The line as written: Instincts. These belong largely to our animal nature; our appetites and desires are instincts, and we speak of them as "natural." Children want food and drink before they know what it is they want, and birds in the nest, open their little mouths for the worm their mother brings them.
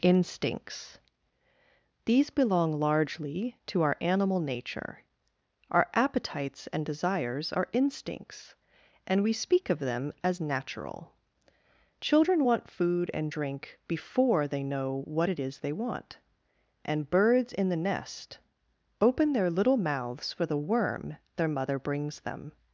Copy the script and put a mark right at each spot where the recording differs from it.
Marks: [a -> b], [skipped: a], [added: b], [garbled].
Instincts. These belong largely to our animal nature; our appetites and desires are instincts, and we speak of them as "natural." Children want food and drink before they know what it is they want, and birds in the nest, open their little mouths for the worm their mother brings them.